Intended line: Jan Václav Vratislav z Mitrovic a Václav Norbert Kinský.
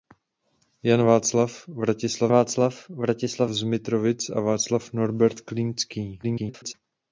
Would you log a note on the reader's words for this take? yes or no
yes